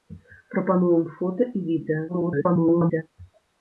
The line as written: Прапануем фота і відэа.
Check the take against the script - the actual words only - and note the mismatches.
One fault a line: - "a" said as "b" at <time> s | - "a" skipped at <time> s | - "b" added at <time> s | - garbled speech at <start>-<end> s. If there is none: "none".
- garbled speech at 2.1-3.0 s